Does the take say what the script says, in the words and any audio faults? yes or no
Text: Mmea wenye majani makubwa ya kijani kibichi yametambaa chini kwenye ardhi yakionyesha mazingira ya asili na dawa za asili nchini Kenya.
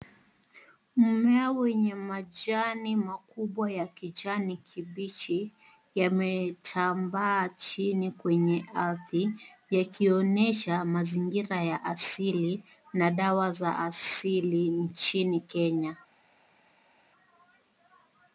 yes